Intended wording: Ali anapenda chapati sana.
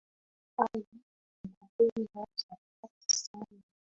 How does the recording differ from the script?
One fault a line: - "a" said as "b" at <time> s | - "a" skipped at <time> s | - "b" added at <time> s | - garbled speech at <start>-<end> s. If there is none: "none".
none